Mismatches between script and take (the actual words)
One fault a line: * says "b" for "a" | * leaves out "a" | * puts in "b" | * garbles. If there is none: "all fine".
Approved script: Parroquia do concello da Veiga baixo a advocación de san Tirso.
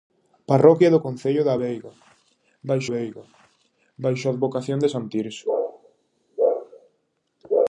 * puts in "Veiga baixo"